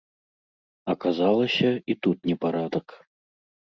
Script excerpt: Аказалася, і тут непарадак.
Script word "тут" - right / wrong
right